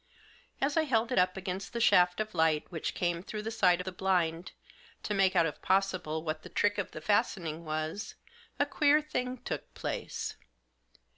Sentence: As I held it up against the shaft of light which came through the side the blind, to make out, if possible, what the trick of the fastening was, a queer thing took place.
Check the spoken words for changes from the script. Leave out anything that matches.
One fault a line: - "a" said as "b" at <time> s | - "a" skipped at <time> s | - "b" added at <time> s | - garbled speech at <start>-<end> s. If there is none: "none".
none